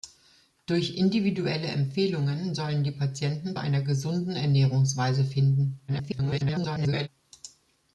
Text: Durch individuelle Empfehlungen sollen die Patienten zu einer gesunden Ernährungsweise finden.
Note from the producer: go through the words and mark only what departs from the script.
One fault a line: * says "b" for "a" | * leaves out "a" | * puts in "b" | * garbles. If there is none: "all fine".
* leaves out "zu"
* garbles